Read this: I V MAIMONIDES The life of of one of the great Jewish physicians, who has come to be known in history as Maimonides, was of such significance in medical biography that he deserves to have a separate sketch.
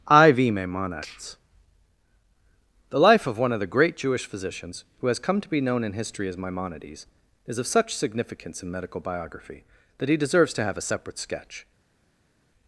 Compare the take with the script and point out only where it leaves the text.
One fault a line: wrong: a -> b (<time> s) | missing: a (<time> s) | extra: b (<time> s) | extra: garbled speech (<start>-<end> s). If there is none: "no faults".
missing: of (3.4 s)
wrong: was -> is (7.5 s)